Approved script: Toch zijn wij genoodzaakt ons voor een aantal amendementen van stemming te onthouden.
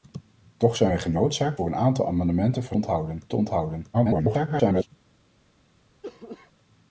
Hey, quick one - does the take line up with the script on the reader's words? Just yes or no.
no